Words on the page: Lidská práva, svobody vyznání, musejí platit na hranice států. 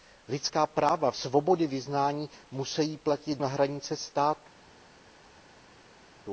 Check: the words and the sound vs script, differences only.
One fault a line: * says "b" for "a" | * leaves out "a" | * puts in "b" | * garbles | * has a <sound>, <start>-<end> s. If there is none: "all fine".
all fine